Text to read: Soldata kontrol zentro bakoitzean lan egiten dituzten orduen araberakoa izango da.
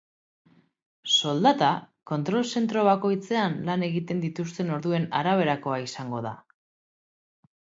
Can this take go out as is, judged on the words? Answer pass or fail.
pass